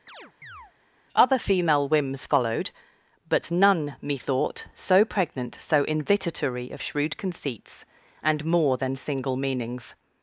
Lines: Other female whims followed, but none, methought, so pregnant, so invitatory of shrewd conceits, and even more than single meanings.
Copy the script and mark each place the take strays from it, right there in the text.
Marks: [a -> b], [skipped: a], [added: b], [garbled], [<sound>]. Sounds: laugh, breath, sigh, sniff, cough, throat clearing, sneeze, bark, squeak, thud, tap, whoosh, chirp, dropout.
[chirp] Other female whims followed, but none, methought, so pregnant, so invitatory of shrewd conceits, and [skipped: even] more than single meanings.